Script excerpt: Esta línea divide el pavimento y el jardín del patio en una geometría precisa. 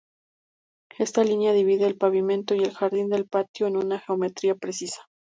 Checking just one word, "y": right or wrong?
right